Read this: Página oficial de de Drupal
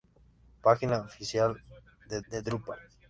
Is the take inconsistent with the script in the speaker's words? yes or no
no